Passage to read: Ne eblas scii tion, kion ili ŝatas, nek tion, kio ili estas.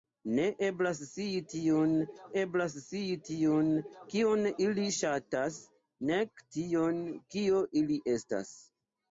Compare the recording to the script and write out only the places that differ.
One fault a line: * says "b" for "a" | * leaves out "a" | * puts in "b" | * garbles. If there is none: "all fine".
* puts in "eblas scii tion"